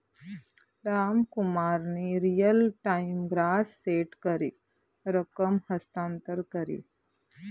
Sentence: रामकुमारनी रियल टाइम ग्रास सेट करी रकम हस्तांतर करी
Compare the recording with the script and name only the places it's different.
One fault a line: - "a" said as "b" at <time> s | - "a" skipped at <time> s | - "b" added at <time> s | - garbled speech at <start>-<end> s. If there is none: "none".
none